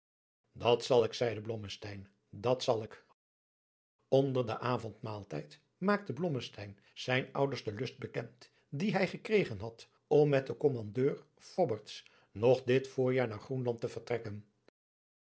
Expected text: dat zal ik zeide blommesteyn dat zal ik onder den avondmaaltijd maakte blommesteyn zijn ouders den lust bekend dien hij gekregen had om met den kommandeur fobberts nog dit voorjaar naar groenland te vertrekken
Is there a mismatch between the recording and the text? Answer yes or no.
no